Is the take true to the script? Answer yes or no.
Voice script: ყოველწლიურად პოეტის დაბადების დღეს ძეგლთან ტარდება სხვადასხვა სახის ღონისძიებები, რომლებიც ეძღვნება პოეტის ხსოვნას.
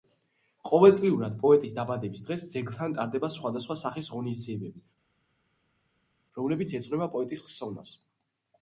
yes